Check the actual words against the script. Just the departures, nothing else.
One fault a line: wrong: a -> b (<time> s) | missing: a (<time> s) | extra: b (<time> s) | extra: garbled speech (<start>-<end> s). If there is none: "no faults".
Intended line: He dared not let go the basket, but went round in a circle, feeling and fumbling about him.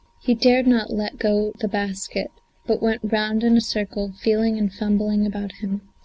no faults